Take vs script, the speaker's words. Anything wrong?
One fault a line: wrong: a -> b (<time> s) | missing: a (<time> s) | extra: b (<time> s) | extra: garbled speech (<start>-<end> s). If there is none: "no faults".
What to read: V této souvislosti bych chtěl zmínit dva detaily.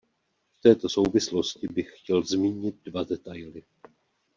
no faults